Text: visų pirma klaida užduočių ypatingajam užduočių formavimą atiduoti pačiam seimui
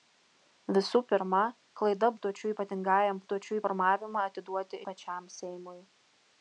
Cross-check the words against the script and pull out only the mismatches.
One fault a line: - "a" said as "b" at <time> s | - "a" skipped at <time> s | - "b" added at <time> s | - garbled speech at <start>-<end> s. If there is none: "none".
none